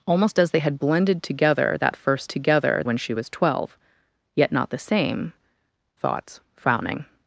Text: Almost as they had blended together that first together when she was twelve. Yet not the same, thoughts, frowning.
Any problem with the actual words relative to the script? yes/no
no